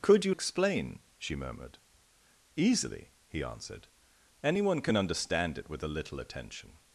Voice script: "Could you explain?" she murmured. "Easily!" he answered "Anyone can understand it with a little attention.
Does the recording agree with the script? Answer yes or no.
yes